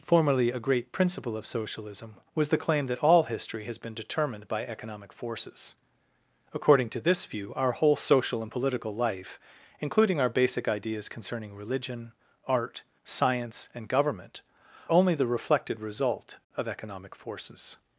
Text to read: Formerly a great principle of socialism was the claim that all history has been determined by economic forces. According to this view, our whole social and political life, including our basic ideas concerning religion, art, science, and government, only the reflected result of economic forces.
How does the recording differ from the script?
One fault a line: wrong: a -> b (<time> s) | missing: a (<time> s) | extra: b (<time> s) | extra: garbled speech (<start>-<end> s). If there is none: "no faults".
no faults